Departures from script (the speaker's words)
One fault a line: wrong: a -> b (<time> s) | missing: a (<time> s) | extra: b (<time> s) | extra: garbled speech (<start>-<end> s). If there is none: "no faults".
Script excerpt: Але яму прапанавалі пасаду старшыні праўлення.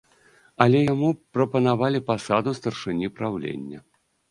no faults